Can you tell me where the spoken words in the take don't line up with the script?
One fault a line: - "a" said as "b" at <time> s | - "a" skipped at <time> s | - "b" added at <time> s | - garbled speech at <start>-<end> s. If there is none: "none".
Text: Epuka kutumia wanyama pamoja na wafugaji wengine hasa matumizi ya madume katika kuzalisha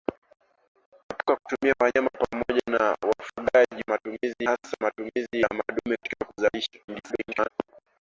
- "wengine" said as "matumizi" at 3.9 s
- garbled speech at 6.9-7.5 s